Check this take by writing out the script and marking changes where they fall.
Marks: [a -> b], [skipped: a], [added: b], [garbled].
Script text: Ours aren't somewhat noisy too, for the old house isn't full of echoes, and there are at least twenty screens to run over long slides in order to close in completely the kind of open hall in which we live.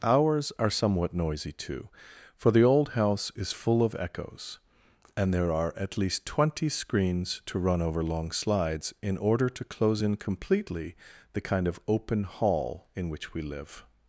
Ours [aren't -> are] somewhat noisy too, for the old house [isn't -> is] full of echoes, and there are at least twenty screens to run over long slides in order to close in completely the kind of open hall in which we live.